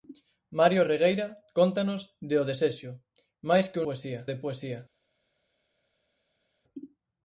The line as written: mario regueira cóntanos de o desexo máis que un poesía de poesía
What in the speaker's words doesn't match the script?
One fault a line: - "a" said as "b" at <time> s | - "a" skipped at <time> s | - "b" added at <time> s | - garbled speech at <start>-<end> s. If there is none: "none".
none